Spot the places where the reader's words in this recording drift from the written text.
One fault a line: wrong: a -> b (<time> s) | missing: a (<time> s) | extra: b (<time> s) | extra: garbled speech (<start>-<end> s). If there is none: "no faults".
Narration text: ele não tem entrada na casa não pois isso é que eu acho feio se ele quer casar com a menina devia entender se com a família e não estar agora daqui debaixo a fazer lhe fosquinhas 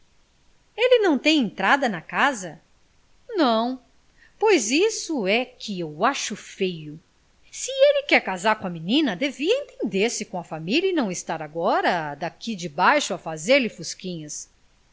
no faults